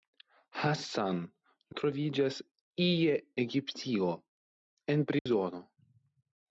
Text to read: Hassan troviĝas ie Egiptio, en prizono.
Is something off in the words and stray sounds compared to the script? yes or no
yes